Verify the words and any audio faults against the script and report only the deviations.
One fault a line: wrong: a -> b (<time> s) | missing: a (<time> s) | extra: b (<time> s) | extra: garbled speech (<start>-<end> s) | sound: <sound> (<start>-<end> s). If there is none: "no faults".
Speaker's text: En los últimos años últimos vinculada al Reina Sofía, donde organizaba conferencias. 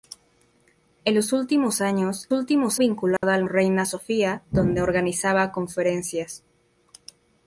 sound: dropout (3.2-3.2 s)